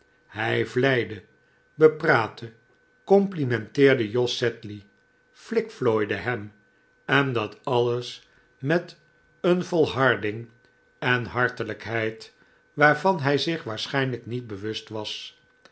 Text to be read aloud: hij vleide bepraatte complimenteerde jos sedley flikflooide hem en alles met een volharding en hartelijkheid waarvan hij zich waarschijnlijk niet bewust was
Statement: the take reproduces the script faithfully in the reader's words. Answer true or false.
false